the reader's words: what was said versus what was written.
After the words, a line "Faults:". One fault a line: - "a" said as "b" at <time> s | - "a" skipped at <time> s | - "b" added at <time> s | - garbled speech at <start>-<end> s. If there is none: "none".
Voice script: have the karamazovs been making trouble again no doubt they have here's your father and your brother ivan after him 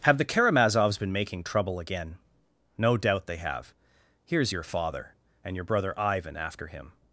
have the karamazovs been making trouble again no doubt they have here's your father and your brother ivan after him
Faults:
none